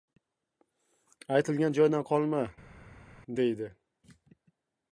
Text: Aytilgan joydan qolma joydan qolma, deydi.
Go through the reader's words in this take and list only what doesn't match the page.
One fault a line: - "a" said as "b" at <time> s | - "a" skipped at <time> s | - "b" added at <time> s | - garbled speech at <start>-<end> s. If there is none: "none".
- "joydan qolma" skipped at 2.4 s